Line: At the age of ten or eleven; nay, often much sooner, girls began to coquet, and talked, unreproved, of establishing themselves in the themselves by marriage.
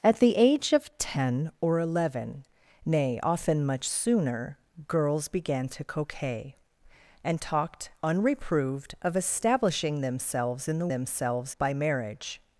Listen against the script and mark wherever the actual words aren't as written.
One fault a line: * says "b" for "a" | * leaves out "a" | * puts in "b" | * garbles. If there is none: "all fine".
all fine